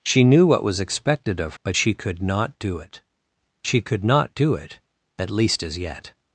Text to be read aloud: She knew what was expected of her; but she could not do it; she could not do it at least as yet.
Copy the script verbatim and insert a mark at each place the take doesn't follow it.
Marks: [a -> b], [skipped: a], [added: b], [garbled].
She knew what was expected of [skipped: her;] but she could not do it; she could not do it at least as yet.